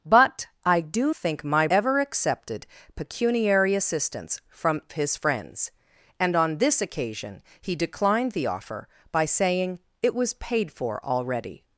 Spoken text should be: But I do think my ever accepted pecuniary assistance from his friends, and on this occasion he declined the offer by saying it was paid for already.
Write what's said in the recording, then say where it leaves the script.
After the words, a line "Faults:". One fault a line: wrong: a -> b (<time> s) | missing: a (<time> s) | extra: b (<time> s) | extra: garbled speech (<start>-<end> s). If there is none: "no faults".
But I do think my ever accepted pecuniary assistance from his friends, and on this occasion he declined the offer by saying it was paid for already.
Faults:
no faults